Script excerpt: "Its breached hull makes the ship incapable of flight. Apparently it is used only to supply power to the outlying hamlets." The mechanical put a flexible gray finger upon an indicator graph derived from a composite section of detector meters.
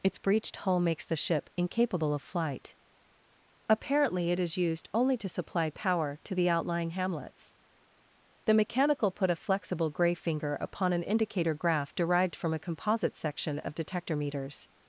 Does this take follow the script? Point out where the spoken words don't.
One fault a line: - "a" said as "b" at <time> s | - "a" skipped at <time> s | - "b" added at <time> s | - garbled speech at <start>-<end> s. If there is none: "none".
none